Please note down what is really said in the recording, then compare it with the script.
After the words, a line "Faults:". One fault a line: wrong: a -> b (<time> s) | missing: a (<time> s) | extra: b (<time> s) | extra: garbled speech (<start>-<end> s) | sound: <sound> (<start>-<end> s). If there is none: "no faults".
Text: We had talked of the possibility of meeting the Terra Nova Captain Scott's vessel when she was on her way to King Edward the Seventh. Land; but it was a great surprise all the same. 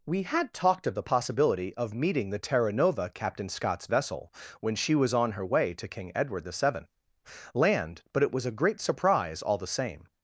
We had talked of the possibility of meeting the Terra Nova Captain Scott's vessel when she was on her way to King Edward the Seventh. Land; but it was a great surprise all the same.
Faults:
no faults